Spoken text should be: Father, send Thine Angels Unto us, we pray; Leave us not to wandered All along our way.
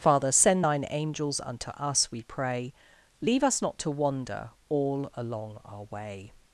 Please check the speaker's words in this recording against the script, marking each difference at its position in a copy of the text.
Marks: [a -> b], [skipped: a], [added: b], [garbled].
Father, send Thine Angels Unto us, we pray; Leave us not to [wandered -> wander] All along our way.